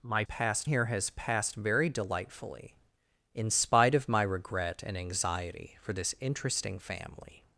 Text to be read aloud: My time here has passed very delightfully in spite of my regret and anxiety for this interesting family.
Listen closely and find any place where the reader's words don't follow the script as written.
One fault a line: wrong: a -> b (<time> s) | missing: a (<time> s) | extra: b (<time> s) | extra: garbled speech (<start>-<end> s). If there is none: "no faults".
wrong: time -> passed (0.2 s)